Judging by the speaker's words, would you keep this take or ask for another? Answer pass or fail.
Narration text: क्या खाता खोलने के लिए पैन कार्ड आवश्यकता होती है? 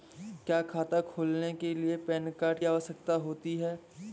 pass